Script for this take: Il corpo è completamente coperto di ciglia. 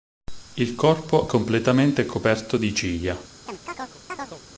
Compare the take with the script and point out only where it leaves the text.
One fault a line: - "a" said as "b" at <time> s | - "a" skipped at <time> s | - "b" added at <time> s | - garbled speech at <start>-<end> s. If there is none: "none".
- "è" skipped at 1.3 s